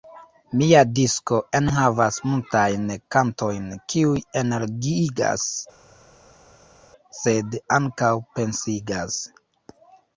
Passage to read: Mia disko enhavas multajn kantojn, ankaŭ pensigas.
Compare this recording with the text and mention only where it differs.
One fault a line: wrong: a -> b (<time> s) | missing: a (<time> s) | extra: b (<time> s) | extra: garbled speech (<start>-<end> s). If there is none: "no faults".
extra: kiuj energiigas sed (3.9 s)